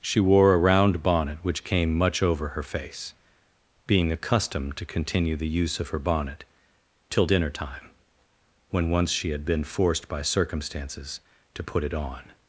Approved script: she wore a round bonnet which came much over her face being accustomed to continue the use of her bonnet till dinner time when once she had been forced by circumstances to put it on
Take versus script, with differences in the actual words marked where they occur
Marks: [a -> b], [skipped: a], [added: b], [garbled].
she wore a round bonnet which came much over her face being accustomed to continue the use of her bonnet till dinner time when once she had been forced by circumstances to put it on